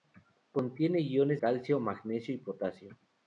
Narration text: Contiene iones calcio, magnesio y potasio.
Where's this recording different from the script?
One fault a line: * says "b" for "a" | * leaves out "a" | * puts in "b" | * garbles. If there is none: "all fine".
all fine